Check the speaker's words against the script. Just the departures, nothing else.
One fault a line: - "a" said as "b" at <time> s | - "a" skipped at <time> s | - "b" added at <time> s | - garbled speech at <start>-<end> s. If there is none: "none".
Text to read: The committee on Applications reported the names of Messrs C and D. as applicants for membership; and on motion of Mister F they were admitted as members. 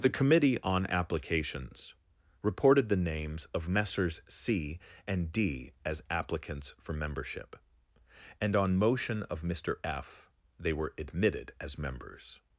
none